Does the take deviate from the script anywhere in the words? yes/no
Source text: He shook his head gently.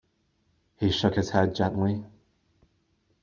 no